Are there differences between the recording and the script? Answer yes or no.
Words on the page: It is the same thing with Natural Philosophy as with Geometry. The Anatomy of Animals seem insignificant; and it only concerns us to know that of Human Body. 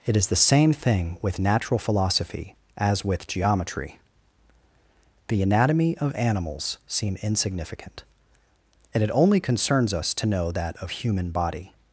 no